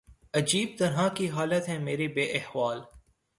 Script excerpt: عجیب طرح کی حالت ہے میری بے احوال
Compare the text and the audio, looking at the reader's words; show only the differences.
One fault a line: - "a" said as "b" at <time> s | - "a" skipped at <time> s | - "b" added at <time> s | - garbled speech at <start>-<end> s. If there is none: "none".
none